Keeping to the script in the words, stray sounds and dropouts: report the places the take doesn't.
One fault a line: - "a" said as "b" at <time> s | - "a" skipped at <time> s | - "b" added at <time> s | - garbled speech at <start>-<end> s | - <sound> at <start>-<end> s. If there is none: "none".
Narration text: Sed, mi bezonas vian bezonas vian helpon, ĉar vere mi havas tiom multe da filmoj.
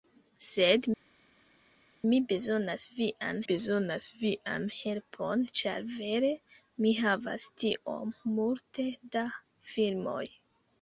none